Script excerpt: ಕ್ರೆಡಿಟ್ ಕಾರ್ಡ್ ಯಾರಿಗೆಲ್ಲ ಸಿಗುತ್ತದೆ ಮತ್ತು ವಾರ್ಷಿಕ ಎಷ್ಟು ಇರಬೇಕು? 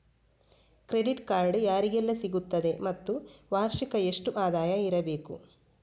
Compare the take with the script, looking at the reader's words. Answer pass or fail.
fail